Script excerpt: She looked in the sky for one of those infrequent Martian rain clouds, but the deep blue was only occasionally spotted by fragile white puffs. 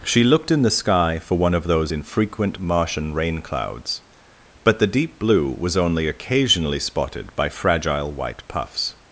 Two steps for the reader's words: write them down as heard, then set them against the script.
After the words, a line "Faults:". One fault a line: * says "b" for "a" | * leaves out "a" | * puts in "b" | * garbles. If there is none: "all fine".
She looked in the sky for one of those infrequent Martian rain clouds, but the deep blue was only occasionally spotted by fragile white puffs.
Faults:
all fine